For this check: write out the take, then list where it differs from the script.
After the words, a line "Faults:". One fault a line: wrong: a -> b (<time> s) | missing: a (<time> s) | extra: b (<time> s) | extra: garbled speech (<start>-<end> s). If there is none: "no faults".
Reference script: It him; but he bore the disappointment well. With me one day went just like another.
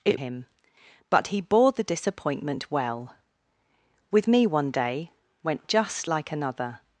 It him; but he bore the disappointment well. With me one day went just like another.
Faults:
no faults